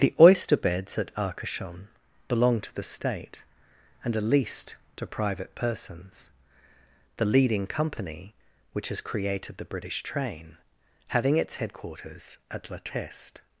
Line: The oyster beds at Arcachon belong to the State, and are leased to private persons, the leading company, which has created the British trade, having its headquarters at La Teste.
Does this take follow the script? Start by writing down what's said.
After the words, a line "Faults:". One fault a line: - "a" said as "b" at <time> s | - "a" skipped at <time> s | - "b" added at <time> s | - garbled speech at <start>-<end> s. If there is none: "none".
The oyster beds at Arcachon belong to the State, and are leased to private persons, the leading company, which has created the British train, having its headquarters at La Teste.
Faults:
- "trade" said as "train" at 10.0 s